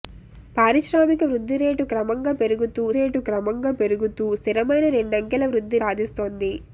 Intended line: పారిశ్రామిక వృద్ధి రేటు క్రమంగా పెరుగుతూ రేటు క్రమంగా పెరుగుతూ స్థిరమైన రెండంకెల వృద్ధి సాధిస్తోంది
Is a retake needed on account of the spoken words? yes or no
no